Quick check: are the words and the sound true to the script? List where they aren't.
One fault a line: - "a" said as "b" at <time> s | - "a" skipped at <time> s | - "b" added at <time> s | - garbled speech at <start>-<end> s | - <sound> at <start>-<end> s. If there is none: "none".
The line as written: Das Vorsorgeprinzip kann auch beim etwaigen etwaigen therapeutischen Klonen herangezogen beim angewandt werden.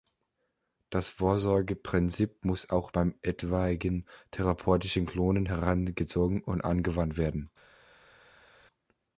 - "kann" said as "muss" at 2.4 s
- "etwaigen" skipped at 4.1 s
- "beim" said as "und" at 6.4 s